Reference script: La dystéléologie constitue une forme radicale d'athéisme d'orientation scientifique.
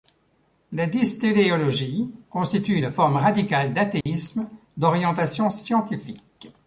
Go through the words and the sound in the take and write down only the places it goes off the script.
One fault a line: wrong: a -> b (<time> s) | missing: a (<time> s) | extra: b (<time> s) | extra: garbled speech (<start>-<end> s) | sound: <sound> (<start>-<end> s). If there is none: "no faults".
sound: dropout (4.0-4.1 s)